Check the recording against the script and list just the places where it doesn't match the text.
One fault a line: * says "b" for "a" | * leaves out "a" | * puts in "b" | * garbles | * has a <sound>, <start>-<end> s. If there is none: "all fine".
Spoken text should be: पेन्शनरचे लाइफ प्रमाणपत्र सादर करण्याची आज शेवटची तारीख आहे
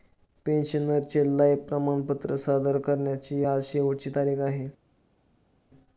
all fine